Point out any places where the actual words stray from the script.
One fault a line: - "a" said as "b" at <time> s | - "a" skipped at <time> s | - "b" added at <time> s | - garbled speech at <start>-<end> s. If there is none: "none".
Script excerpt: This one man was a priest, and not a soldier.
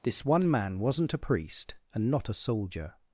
- "was" said as "wasn't" at 0.8 s